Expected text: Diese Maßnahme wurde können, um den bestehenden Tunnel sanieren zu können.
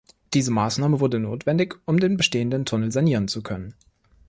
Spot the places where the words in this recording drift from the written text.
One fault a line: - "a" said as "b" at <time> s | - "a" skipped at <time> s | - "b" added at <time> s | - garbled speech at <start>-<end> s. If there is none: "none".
- "können" said as "notwendig" at 1.2 s